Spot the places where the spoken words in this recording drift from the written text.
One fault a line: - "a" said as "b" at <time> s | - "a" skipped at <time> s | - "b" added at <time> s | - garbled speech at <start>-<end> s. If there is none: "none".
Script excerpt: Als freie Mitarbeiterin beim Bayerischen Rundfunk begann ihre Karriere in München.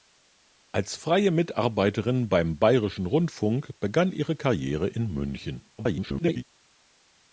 - garbled speech at 5.8-6.4 s